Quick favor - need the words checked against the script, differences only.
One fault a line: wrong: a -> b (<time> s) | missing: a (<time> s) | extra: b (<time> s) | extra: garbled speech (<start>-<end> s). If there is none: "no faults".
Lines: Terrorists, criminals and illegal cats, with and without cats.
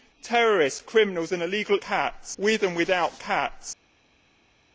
no faults